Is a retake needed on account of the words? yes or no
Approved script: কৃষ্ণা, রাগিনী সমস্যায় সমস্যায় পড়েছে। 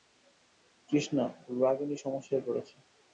yes